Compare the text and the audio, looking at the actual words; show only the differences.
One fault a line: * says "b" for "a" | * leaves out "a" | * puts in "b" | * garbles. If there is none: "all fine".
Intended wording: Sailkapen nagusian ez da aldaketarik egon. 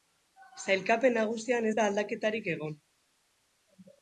all fine